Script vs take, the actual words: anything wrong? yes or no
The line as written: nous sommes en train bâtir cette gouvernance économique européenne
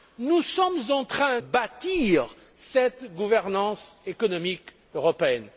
no